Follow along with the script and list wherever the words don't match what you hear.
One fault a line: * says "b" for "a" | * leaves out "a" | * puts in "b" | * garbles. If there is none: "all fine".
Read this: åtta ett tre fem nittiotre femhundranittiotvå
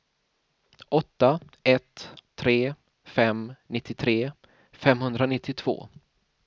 all fine